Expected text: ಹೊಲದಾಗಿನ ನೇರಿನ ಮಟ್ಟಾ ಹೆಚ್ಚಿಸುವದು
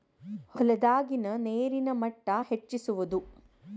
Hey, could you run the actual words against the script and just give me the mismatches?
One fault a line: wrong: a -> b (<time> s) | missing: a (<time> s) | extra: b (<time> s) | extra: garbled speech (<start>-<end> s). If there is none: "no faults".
no faults